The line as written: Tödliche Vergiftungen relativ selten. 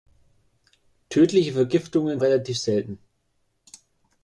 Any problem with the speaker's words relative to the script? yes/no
no